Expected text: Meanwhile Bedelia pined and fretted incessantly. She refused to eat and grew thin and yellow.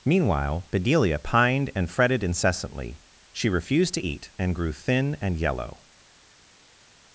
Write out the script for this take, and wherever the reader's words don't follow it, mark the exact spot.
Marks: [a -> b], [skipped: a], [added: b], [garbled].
Meanwhile Bedelia pined and fretted incessantly. She refused to eat and grew thin and yellow.